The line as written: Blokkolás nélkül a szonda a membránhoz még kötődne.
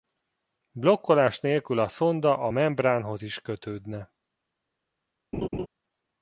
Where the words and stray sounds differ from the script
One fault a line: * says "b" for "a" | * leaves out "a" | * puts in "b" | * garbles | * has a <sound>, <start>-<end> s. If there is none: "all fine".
* says "is" for "még"
* has a laugh, 5.3-5.7 s